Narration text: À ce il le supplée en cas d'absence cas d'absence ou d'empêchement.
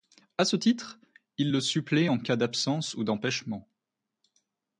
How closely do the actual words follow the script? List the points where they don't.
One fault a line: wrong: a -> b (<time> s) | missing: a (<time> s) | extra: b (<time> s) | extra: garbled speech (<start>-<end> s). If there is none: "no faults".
extra: titre (0.6 s)
missing: cas d'absence (3.0 s)